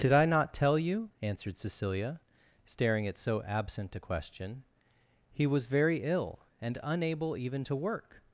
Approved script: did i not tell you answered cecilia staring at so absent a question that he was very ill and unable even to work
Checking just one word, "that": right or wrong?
wrong